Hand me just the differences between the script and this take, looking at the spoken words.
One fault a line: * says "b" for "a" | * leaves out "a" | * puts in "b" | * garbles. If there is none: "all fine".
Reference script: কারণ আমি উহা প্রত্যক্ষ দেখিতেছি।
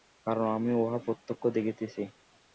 all fine